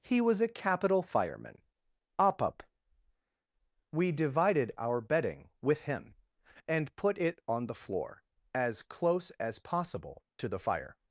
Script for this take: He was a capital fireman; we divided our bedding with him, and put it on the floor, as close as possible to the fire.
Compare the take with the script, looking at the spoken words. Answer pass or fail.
fail